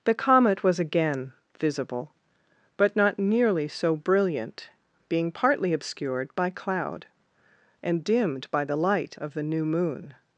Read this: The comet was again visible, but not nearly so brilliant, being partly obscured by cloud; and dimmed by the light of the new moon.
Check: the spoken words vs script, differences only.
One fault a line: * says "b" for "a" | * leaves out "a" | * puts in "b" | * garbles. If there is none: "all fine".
all fine